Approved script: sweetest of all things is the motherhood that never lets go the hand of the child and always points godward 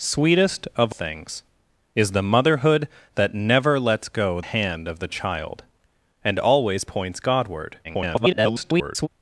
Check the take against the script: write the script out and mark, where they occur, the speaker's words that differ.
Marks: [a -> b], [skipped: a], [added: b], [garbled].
sweetest of [skipped: all] things is the motherhood that never lets go [skipped: the] hand of the child and always points godward [garbled]